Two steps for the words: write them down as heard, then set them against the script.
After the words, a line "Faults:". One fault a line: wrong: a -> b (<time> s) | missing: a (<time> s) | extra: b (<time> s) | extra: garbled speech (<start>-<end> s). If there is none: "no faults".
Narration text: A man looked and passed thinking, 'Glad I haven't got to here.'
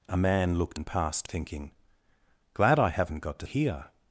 A man looked and passed thinking, 'Glad I haven't got to here.'
Faults:
no faults